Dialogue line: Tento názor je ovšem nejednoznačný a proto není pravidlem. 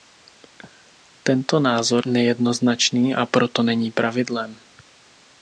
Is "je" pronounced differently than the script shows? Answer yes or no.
yes